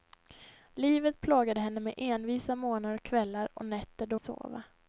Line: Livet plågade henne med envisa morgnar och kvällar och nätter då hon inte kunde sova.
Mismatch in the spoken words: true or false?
true